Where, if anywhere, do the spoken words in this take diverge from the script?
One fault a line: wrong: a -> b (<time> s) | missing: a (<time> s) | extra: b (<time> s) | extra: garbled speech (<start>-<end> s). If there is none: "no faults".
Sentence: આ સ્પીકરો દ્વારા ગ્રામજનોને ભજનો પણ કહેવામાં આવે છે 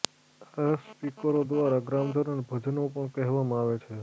no faults